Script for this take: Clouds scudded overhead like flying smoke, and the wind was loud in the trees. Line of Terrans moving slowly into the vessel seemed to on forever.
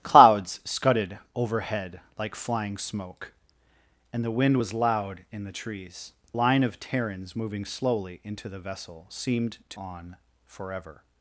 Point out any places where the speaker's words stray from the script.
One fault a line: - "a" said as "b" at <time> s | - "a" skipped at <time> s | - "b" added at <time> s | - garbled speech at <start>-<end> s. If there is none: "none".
none